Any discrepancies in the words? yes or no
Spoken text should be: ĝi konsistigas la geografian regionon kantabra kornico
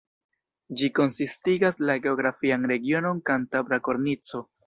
no